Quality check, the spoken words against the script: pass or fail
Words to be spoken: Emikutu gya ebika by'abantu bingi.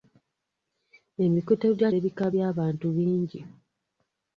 pass